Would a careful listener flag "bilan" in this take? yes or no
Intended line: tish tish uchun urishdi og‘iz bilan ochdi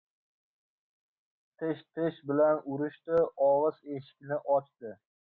yes